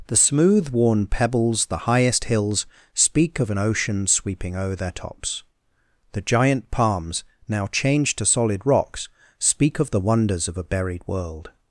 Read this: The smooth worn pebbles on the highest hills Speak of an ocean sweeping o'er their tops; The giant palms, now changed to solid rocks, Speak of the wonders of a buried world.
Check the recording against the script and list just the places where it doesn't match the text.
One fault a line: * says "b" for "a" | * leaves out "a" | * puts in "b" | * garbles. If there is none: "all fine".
* leaves out "on"